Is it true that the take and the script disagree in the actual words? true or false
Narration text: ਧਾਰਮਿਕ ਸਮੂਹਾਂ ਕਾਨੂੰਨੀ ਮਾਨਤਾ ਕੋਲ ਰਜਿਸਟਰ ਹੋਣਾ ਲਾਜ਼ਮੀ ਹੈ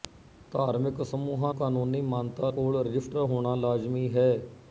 false